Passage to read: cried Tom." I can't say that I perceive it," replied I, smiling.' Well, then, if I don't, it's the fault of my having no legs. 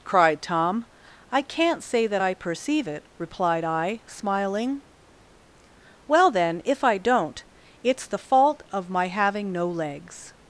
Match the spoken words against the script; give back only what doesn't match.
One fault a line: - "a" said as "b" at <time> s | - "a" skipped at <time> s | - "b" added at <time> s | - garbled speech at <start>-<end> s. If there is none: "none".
none